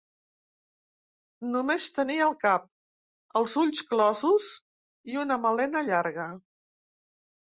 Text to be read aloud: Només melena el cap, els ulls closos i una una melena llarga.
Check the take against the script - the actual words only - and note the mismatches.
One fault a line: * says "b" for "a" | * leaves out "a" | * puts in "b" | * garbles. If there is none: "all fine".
* says "tenia" for "melena"
* leaves out "una"